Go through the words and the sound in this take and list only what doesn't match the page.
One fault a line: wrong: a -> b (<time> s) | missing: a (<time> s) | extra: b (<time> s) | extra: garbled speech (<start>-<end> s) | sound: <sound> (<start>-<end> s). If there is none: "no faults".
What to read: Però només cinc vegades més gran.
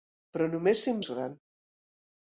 missing: vegades (1.0 s)